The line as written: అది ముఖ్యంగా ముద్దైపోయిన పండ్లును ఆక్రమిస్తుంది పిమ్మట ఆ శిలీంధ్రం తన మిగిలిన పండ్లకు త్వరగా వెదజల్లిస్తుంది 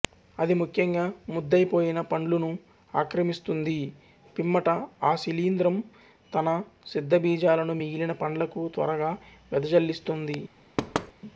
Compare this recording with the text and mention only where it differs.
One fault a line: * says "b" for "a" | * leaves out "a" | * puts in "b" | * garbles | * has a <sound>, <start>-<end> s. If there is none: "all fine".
* puts in "సిద్ధబీజాలను"
* has a thud, 10.8-11.1 s